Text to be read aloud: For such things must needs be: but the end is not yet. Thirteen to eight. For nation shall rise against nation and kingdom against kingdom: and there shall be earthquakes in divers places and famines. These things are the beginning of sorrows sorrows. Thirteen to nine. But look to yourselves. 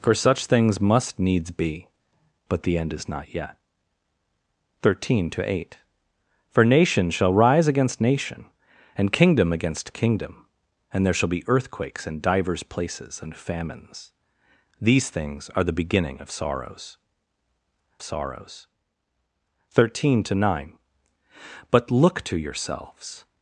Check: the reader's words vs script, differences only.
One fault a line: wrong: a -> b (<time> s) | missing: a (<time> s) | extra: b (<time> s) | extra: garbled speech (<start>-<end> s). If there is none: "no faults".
no faults